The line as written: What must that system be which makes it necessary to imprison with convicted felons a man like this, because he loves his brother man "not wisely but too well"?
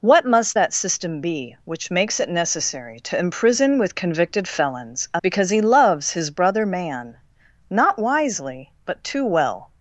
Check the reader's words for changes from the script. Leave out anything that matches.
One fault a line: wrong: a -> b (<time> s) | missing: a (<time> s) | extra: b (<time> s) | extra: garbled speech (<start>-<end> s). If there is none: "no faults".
missing: man like this (5.2 s)